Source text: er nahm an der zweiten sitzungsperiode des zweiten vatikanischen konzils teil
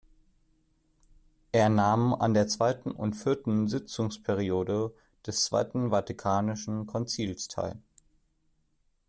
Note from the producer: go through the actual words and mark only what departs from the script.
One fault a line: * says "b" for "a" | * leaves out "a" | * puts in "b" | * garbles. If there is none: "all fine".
* puts in "und vierten"